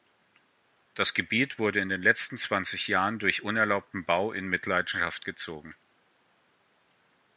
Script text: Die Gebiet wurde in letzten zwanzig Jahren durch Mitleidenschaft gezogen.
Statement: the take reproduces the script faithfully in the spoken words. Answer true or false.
false